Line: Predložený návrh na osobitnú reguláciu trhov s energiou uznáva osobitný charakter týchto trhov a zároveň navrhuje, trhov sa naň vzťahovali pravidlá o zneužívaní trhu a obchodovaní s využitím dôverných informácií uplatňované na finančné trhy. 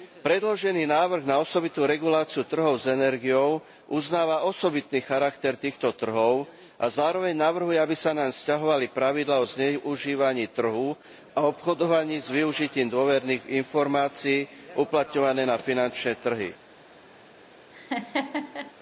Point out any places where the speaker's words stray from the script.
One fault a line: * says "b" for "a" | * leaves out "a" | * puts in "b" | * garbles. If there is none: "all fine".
* says "aby" for "trhov"